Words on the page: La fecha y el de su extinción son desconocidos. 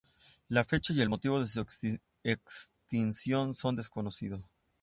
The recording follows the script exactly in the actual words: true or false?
false